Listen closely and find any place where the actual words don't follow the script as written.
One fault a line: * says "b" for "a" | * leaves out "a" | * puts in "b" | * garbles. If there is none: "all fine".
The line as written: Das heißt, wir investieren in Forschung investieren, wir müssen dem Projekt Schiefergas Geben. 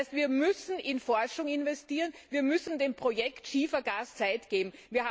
* says "müssen" for "investieren"
* puts in "Zeit"